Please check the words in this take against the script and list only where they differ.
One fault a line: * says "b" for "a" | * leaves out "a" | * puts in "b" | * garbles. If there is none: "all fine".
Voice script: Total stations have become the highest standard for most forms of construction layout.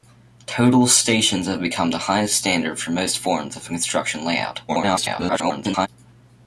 * garbles